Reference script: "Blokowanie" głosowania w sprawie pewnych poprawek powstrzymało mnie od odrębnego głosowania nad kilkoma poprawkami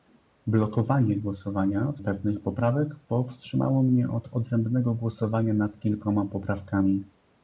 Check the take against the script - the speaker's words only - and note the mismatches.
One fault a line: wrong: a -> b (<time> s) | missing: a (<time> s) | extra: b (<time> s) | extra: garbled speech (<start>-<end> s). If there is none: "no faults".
missing: sprawie (2.0 s)